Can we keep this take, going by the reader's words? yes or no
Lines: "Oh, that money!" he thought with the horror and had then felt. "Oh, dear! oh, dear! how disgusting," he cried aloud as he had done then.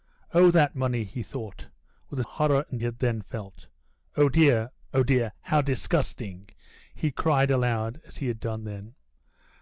yes